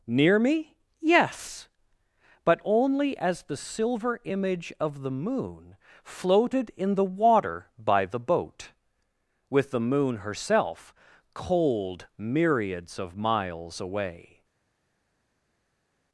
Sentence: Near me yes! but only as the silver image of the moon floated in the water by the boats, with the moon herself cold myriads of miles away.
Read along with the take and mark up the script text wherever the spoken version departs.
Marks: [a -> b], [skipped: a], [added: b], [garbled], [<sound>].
Near me yes! but only as the silver image of the moon floated in the water by the [boats, -> boat] with the moon herself cold myriads of miles away.